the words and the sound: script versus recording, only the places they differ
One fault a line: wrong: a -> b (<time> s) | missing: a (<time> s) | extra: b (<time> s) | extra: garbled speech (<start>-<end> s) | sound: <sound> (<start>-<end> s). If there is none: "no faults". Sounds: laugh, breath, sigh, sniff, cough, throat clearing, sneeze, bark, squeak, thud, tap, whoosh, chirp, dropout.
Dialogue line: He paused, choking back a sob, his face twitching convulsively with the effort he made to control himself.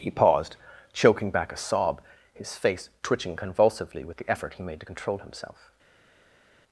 no faults